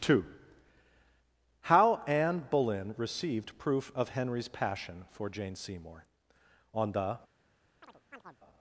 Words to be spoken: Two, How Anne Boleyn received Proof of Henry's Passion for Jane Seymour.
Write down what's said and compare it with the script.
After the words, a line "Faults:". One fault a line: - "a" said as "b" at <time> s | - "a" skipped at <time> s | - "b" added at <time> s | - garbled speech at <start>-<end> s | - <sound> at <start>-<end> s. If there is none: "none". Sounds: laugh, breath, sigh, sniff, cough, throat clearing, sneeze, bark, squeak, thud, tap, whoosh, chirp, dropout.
Two, How Anne Boleyn received Proof of Henry's Passion for Jane Seymour. On the.
Faults:
- "On the" added at 6.7 s
- chirp at 7.8-8.4 s